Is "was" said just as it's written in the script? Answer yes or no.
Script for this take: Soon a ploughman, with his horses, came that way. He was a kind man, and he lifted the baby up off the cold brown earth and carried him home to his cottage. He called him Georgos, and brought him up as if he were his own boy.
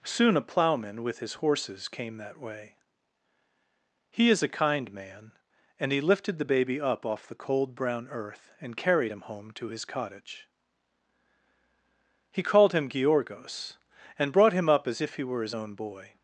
no